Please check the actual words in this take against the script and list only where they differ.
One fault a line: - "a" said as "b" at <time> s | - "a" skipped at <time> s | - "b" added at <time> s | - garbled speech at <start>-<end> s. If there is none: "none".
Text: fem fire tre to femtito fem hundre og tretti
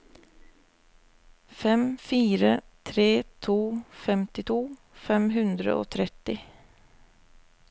none